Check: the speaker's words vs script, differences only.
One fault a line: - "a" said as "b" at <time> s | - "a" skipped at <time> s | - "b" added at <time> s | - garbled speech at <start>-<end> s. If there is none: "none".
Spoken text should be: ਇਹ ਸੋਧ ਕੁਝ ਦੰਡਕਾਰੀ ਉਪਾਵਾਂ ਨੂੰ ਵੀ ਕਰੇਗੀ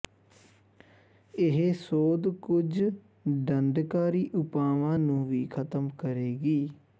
- "ਖਤਮ" added at 5.5 s